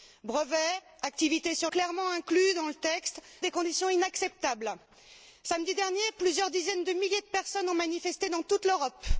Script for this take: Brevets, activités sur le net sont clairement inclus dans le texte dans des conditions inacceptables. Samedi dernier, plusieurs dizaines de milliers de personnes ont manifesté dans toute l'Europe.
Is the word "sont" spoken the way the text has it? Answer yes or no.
no